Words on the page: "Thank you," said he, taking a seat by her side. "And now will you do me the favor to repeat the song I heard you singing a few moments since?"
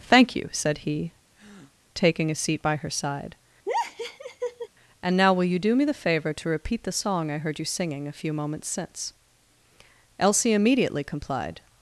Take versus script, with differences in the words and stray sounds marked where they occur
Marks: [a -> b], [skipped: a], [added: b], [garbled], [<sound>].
"Thank you," said he, [breath] taking a seat by her side. [laugh] "And now will you do me the favor to repeat the song I heard you singing a few moments since?" [added: Elsie immediately complied]